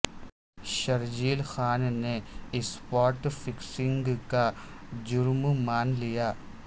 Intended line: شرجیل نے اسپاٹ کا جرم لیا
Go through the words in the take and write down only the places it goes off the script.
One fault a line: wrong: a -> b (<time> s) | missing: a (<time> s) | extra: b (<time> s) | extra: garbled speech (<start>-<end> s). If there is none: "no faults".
extra: خان (1.4 s)
extra: فکسنگ (3.3 s)
extra: مان (5.6 s)